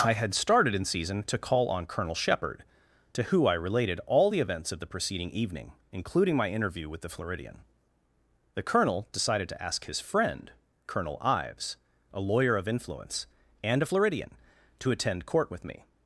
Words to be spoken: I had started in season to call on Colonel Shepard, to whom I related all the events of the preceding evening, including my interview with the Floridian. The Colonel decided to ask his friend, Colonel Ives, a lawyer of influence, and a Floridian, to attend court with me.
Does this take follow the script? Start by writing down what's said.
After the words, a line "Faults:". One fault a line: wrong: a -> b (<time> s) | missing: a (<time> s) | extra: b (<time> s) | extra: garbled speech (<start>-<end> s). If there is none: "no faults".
I had started in season to call on Colonel Shepard, to who I related all the events of the preceding evening, including my interview with the Floridian. The Colonel decided to ask his friend, Colonel Ives, a lawyer of influence, and a Floridian, to attend court with me.
Faults:
wrong: whom -> who (3.2 s)